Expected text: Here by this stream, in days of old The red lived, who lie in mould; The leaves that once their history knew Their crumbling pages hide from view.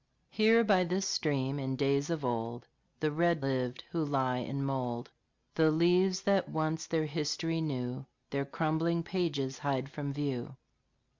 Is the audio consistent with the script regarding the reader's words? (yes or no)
yes